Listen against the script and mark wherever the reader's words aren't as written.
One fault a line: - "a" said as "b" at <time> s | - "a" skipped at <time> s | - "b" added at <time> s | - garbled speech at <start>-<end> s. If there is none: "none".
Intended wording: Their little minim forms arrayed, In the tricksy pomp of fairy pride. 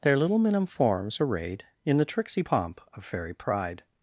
none